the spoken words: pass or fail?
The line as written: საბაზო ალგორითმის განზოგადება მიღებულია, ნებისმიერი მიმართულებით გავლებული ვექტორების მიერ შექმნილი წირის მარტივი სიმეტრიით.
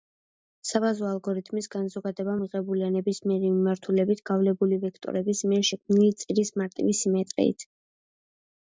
pass